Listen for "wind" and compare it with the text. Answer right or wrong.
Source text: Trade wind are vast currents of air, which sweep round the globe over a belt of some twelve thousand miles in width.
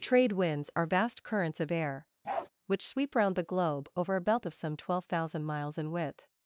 wrong